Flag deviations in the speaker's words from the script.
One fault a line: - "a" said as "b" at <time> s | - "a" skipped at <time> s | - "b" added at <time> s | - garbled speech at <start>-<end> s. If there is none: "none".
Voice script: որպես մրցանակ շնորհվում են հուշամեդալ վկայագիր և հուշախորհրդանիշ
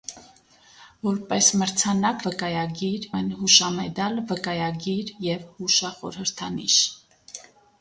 - "շնորհվում" said as "վկայագիր" at 2.3 s